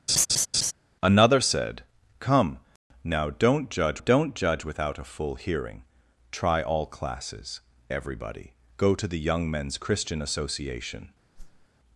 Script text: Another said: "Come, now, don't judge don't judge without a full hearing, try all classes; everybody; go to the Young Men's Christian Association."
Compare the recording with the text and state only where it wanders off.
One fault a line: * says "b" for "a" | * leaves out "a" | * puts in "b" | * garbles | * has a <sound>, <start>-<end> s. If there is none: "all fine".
* has a laugh, 0.1-0.7 s
* has a whoosh, 11.3-11.7 s